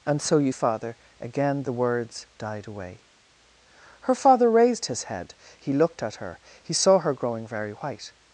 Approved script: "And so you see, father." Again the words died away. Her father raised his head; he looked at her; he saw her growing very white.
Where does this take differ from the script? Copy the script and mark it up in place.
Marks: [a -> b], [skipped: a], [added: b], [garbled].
"And so you [skipped: see,] father." Again the words died away. Her father raised his head; he looked at her; he saw her growing very white.